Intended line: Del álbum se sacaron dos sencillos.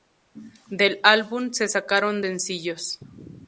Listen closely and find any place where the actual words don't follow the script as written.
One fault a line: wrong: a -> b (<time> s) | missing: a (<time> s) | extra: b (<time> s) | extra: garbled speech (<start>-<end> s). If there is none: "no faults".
missing: dos (2.2 s)